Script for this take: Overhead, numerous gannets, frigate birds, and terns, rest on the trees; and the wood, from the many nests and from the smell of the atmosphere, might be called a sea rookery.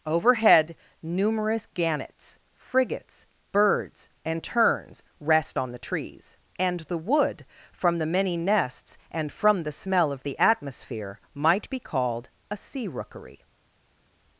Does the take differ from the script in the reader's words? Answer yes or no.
yes